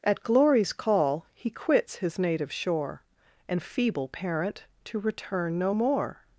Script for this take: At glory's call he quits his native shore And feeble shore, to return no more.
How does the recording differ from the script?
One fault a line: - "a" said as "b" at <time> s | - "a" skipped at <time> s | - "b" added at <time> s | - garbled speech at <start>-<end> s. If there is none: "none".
- "shore" said as "parent" at 4.1 s